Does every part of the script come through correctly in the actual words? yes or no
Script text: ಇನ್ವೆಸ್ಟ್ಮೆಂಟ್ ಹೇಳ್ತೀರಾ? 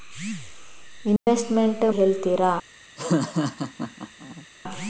yes